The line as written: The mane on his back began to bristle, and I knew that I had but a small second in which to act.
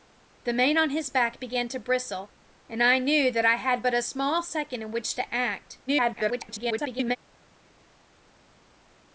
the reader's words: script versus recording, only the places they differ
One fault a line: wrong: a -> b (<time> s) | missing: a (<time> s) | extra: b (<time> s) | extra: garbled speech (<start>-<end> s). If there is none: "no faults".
extra: garbled speech (5.9-7.2 s)